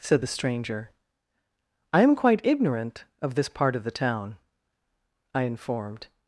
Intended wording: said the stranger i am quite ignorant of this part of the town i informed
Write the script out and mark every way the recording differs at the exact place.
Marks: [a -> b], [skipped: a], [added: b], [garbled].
said the stranger i am quite ignorant of this part of the town i informed